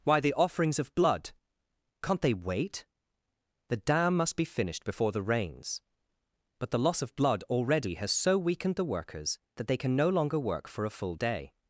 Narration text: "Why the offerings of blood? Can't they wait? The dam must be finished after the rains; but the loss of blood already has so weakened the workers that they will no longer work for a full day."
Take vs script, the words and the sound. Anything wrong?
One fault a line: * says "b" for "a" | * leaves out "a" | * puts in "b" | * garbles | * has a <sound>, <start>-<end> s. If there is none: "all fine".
* says "before" for "after"
* says "can" for "will"